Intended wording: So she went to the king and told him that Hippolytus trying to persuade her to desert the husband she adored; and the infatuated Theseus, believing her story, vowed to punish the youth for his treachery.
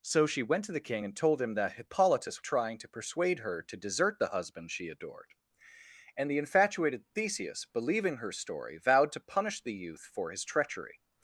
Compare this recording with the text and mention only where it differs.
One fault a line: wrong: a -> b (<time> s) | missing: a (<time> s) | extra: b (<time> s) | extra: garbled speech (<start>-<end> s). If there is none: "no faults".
no faults